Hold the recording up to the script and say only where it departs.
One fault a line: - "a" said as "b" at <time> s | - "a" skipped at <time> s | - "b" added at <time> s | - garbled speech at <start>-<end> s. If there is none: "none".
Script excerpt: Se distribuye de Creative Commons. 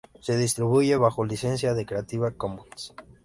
- "bajo licencia" added at 0.9 s